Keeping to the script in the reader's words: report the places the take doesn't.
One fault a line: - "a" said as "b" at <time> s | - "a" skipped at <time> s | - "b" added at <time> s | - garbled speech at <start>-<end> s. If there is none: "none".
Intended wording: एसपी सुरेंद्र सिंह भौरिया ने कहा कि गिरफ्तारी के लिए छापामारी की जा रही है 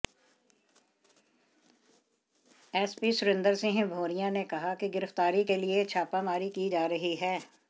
none